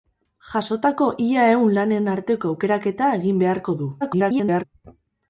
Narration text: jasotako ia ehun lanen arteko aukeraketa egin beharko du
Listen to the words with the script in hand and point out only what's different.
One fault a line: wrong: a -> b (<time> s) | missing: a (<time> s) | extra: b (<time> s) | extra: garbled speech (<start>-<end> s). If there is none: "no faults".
extra: garbled speech (4.0-4.6 s)